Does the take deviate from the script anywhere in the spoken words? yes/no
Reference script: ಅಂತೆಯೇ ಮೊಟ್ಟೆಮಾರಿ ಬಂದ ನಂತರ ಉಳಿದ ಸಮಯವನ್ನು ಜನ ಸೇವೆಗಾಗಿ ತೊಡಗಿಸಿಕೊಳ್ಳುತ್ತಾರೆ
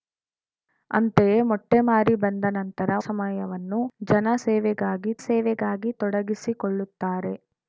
yes